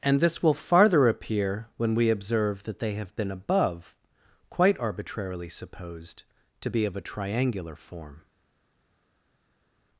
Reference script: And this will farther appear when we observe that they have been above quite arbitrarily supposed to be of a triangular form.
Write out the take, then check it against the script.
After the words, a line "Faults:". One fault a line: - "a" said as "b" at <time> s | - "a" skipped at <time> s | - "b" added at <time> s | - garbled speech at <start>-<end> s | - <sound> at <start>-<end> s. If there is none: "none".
And this will farther appear when we observe that they have been above quite arbitrarily supposed to be of a triangular form.
Faults:
none